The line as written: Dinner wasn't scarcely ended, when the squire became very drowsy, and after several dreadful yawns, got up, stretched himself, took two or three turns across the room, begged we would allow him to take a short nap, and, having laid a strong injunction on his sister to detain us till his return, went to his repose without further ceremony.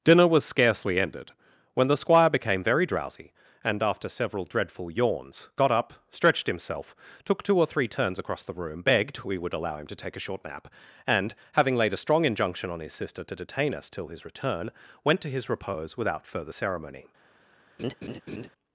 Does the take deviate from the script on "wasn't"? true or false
true